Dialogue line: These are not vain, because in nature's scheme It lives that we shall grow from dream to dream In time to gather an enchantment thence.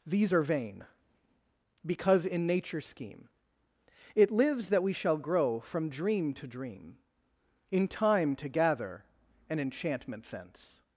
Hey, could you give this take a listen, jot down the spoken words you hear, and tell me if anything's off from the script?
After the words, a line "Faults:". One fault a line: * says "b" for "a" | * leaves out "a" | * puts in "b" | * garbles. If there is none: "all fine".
These are vain, because in nature's scheme It lives that we shall grow from dream to dream In time to gather an enchantment thence.
Faults:
* leaves out "not"